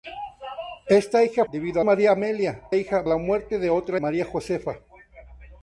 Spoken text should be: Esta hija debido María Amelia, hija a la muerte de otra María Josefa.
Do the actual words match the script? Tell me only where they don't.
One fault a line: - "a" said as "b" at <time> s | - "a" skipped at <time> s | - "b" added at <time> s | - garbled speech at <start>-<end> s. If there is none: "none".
none